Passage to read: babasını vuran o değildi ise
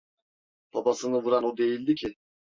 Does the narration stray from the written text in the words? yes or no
yes